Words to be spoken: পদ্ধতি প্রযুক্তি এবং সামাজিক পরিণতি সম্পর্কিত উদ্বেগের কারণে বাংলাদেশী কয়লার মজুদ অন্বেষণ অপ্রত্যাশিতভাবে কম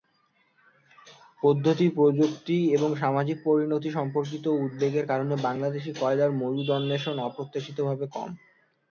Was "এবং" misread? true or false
false